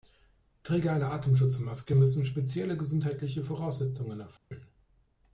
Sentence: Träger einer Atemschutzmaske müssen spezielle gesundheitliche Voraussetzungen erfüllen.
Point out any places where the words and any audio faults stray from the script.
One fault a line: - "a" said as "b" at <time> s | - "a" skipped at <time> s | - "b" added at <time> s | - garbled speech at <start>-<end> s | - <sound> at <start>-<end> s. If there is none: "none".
- dropout at 4.4-4.5 s